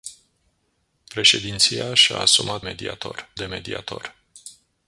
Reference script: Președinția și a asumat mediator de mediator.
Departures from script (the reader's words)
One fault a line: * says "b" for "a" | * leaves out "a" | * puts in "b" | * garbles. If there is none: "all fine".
all fine